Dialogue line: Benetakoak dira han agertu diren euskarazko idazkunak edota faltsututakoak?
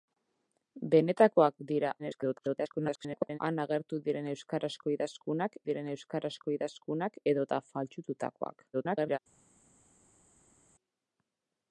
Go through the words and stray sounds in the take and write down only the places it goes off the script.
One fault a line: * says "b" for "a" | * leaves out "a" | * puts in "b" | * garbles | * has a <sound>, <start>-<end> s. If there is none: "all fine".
* garbles
* puts in "diren euskarazko idazkunak"
* garbles